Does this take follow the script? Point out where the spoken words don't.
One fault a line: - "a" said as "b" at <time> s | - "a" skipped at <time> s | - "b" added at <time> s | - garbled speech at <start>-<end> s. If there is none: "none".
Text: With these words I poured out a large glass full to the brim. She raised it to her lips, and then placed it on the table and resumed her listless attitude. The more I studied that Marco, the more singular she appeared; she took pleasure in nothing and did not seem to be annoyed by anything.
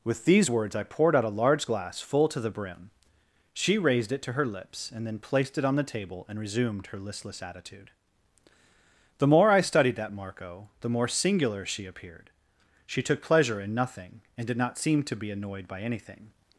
none